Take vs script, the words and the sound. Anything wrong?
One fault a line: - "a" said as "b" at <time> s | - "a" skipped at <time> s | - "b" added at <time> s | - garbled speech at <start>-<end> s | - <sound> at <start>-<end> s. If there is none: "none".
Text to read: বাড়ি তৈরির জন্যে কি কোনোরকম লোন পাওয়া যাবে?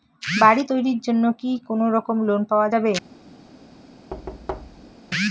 - thud at 4.1-4.9 s